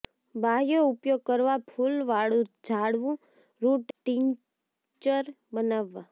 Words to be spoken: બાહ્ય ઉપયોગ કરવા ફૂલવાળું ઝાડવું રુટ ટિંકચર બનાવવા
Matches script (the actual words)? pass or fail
pass